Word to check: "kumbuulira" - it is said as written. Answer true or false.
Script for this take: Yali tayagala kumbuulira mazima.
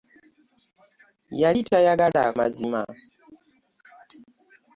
false